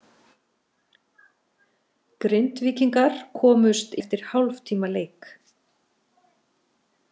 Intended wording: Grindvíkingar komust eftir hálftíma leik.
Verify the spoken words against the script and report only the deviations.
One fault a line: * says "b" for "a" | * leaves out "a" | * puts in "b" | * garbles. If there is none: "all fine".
all fine